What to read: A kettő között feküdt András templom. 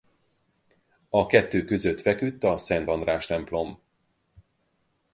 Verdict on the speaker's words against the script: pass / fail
fail